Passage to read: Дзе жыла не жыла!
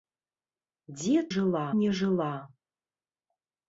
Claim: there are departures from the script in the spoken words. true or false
false